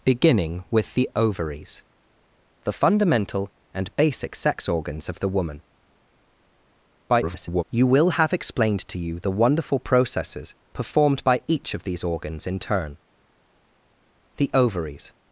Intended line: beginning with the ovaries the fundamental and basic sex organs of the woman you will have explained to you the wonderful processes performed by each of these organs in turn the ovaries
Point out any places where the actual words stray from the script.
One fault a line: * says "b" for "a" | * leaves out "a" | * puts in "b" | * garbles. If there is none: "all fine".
* garbles